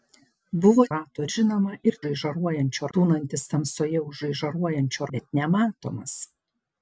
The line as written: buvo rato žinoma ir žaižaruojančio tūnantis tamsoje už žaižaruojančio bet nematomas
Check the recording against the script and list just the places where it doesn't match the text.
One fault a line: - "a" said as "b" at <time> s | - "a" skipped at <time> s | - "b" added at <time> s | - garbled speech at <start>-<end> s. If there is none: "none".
none